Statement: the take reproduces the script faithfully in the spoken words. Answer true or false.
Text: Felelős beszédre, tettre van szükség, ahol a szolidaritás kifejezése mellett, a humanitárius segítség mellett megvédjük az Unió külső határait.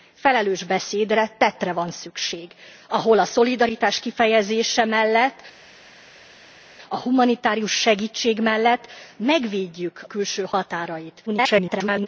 false